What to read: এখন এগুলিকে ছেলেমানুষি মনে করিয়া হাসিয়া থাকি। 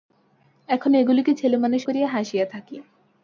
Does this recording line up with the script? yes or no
no